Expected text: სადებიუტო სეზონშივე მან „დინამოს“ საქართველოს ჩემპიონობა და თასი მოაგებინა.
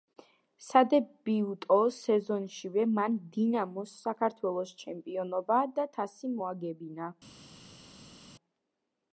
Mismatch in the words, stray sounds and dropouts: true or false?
false